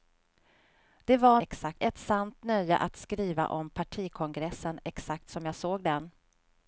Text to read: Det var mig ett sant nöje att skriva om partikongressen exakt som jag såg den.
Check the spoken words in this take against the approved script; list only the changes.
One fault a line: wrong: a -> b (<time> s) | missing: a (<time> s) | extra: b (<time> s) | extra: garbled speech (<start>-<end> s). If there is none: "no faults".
wrong: mig -> exakt (1.4 s)